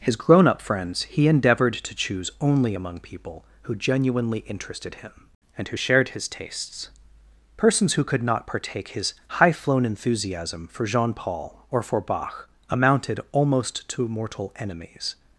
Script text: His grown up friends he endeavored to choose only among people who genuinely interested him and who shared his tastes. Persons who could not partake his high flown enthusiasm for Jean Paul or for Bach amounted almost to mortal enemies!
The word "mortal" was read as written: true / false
true